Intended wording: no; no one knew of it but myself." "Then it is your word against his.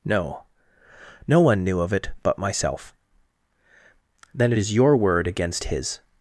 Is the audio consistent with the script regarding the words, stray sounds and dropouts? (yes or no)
yes